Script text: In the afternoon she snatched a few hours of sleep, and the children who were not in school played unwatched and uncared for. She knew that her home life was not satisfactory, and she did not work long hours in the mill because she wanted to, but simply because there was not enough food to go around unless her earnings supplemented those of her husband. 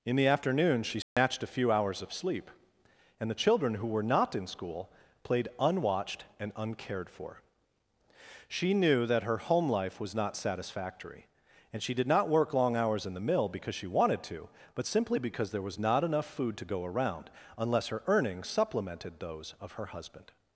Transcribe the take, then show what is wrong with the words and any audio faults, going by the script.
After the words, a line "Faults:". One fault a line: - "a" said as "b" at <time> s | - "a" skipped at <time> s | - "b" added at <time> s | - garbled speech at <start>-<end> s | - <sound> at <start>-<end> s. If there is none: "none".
In the afternoon she snatched a few hours of sleep, and the children who were not in school played unwatched and uncared for. She knew that her home life was not satisfactory, and she did not work long hours in the mill because she wanted to, but simply because there was not enough food to go around unless her earnings supplemented those of her husband.
Faults:
- dropout at 1.0-1.2 s